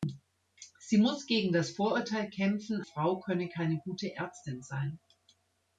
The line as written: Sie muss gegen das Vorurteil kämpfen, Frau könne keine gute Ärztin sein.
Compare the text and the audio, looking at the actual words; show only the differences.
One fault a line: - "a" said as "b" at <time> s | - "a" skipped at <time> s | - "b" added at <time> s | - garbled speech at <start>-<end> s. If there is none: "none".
none